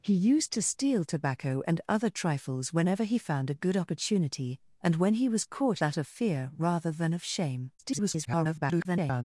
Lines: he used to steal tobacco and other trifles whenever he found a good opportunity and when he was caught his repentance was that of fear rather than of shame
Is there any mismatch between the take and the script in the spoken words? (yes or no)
yes